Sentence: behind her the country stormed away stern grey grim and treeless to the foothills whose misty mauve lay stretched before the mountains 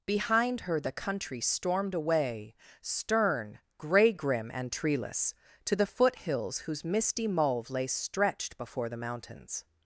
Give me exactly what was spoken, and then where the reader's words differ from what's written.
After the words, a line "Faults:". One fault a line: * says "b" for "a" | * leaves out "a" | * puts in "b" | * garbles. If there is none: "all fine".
behind her the country stormed away stern grey grim and treeless to the foothills whose misty mauve lay stretched before the mountains
Faults:
all fine